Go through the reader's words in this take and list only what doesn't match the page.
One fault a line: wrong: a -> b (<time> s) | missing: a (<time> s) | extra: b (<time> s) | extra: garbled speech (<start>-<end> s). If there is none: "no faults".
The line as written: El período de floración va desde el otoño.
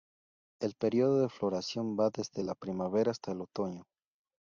extra: la primavera hasta (2.4 s)